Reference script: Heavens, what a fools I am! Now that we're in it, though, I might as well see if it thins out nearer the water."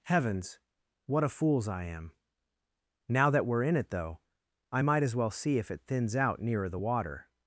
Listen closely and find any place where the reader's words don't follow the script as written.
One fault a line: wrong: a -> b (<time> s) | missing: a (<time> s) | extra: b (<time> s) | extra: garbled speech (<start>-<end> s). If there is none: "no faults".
no faults